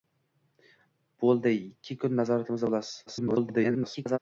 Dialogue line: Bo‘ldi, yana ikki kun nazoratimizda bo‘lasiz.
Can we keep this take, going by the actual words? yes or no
no